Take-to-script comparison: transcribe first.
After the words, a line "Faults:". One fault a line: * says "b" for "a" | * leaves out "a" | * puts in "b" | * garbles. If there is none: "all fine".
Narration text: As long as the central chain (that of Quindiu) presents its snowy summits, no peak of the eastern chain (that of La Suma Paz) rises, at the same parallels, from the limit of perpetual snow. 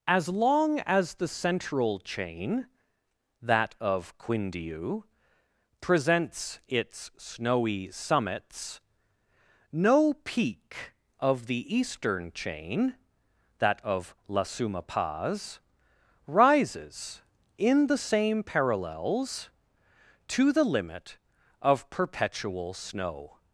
As long as the central chain (that of Quindiu) presents its snowy summits, no peak of the eastern chain (that of La Suma Paz) rises, in the same parallels, to the limit of perpetual snow.
Faults:
* says "in" for "at"
* says "to" for "from"